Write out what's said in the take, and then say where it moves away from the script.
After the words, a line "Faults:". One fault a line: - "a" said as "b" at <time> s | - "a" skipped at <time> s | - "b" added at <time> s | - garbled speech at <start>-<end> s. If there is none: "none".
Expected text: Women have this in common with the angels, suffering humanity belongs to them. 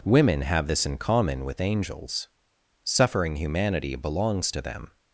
Women have this in common with angels, suffering humanity belongs to them.
Faults:
- "the" skipped at 1.6 s